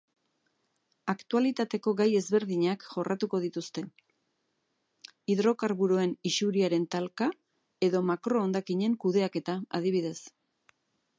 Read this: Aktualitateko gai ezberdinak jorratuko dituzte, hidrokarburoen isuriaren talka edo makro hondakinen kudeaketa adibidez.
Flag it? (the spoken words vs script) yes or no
no